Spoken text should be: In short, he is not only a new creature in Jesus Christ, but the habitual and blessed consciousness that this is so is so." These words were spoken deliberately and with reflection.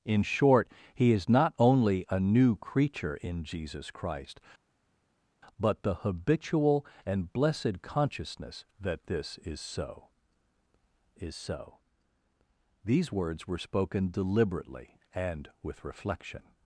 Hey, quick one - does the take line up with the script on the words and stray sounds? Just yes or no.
yes